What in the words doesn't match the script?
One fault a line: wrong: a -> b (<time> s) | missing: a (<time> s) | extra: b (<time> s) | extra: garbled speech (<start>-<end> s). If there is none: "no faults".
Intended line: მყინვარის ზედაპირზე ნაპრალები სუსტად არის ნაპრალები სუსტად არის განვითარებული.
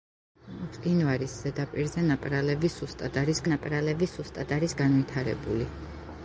no faults